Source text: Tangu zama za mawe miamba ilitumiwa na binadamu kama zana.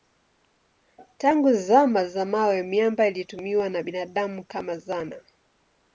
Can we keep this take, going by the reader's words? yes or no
yes